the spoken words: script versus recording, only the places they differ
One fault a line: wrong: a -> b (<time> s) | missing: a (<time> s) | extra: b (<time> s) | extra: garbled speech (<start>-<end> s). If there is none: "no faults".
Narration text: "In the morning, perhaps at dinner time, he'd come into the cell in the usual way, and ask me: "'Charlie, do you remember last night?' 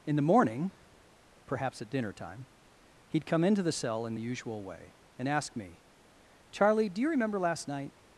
no faults